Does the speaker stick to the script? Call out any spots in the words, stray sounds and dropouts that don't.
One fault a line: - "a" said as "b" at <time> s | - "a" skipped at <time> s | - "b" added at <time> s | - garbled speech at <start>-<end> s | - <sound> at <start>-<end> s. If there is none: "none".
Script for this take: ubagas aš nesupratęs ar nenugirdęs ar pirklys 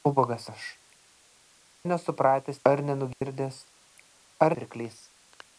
- dropout at 3.1-3.2 s